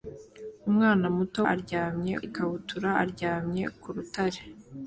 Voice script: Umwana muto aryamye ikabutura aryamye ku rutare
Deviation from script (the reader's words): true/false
false